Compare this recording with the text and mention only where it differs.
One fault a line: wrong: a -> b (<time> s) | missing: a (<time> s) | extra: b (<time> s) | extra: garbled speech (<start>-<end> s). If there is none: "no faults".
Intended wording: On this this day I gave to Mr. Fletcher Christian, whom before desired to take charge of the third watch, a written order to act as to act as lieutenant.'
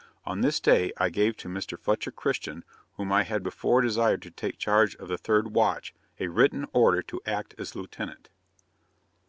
missing: this (0.6 s)
extra: I had (3.1 s)
missing: to act as (7.8 s)